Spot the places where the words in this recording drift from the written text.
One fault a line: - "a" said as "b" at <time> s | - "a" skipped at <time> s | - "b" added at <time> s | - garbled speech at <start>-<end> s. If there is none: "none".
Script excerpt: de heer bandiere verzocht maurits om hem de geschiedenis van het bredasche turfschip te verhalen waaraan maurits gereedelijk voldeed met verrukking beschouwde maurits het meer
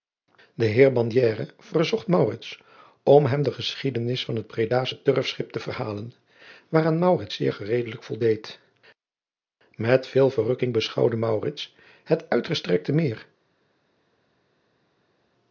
- "zeer" added at 7.4 s
- "veel" added at 10.1 s
- "uitgestrekte" added at 12.3 s